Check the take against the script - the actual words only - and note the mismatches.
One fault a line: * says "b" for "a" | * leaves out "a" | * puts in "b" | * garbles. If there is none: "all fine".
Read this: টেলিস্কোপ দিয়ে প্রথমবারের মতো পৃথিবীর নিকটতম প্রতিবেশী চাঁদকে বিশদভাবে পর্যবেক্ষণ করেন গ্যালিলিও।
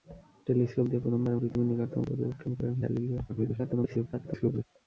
* leaves out "মতো"
* leaves out "প্রতিবেশী চাঁদকে বিশদভাবে"
* garbles